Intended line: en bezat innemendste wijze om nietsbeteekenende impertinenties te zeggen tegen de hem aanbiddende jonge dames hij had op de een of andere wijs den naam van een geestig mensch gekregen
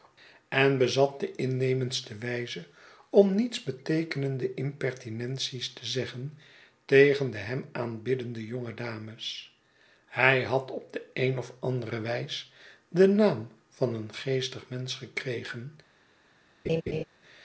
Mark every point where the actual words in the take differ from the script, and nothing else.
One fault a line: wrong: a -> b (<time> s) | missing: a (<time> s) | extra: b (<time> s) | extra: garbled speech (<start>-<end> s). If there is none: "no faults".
extra: de (1.2 s)